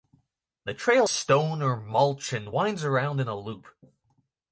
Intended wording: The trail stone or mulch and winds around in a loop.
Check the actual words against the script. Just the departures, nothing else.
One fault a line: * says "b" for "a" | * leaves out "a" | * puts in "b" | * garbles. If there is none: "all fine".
all fine